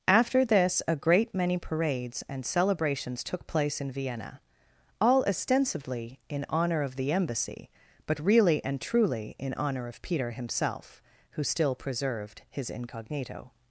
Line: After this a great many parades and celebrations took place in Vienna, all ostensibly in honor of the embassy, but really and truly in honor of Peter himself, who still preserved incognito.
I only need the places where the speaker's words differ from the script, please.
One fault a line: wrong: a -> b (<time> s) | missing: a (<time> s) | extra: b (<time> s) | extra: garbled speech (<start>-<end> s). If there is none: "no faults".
extra: his (12.5 s)